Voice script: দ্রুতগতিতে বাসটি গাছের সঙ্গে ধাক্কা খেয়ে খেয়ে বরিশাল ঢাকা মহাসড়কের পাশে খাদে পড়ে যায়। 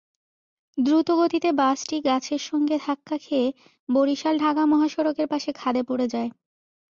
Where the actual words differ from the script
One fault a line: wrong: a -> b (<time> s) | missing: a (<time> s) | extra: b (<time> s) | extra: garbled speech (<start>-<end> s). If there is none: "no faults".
missing: খেয়ে (3.5 s)